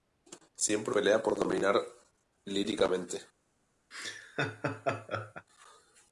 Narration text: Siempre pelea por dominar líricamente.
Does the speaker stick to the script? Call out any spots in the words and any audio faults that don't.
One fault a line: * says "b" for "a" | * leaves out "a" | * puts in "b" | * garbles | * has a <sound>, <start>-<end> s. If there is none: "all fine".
* has a laugh, 3.9-5.5 s